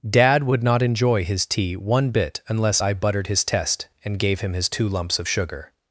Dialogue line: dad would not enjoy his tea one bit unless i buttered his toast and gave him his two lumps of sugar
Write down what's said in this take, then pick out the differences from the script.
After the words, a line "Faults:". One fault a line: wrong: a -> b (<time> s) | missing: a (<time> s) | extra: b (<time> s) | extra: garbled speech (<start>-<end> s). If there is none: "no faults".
dad would not enjoy his tea one bit unless i buttered his test and gave him his two lumps of sugar
Faults:
wrong: toast -> test (3.4 s)